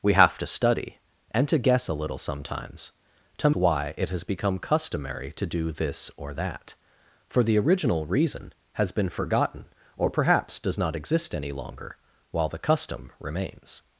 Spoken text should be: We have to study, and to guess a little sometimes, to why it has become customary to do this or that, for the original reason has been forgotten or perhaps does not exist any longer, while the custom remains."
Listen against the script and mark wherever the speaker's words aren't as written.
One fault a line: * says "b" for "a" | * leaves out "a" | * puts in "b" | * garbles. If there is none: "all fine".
all fine